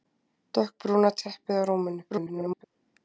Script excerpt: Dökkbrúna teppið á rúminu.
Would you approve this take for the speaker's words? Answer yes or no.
no